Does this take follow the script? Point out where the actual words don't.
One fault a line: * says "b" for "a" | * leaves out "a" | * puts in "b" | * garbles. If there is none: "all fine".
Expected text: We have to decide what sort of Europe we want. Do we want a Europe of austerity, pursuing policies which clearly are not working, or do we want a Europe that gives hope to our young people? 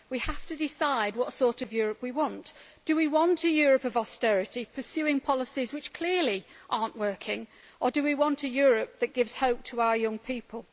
all fine